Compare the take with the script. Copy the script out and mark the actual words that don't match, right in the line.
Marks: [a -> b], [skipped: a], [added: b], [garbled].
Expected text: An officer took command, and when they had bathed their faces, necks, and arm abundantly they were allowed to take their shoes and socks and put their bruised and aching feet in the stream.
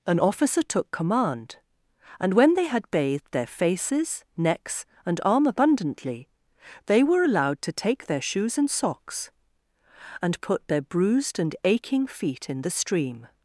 An officer took command, and when they had bathed their faces, necks, and arm abundantly they were allowed to take their shoes and socks and put their bruised and aching feet in the stream.